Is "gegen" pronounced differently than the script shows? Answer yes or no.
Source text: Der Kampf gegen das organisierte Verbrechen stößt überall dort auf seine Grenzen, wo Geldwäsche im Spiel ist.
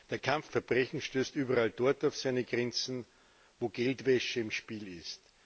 yes